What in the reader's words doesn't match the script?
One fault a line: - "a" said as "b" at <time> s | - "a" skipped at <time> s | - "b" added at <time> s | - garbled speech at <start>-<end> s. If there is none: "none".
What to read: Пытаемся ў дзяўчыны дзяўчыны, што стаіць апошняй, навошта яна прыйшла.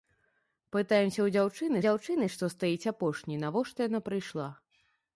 none